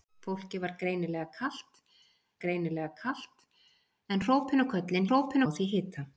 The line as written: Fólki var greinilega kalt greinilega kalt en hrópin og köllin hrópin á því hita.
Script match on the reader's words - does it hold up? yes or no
yes